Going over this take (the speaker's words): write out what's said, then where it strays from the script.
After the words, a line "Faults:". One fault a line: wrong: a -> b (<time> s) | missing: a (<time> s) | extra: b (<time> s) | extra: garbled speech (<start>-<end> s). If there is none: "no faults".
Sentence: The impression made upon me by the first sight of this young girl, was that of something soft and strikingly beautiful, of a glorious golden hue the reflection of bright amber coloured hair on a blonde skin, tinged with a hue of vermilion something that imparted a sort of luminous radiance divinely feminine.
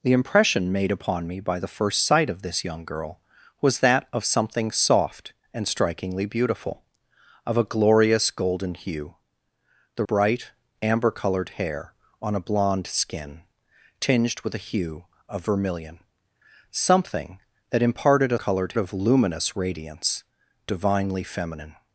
The impression made upon me by the first sight of this young girl, was that of something soft and strikingly beautiful, of a glorious golden hue the bright amber coloured hair on a blonde skin, tinged with a hue of vermilion something that imparted a coloured of luminous radiance divinely feminine.
Faults:
missing: reflection of (10.1 s)
wrong: sort -> coloured (18.3 s)